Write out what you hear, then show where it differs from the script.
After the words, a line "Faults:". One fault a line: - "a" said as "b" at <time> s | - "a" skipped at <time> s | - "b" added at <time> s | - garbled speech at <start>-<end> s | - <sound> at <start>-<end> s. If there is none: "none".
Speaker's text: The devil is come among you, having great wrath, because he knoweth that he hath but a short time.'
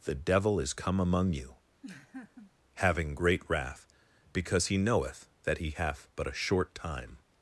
The devil is come among you, having great wrath, because he knoweth that he hath but a short time.'
Faults:
- laugh at 1.8-2.5 s